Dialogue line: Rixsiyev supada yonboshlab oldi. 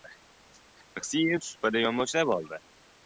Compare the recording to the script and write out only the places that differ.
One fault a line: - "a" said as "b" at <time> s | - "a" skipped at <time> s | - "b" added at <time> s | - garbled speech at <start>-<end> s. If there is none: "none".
none